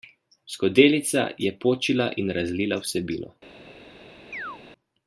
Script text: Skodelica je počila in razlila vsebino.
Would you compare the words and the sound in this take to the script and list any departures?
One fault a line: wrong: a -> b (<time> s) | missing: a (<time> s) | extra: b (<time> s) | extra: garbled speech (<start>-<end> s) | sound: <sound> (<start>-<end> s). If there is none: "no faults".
sound: chirp (4.3-4.6 s)